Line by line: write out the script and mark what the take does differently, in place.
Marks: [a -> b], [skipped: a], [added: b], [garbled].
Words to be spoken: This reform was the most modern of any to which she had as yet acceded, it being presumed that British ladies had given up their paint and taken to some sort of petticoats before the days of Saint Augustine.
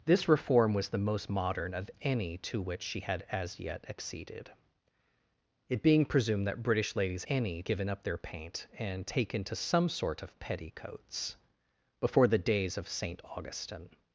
This reform was the most modern of any to which she had as yet acceded, it being presumed that British ladies [had -> any] given up their paint and taken to some sort of petticoats before the days of Saint Augustine.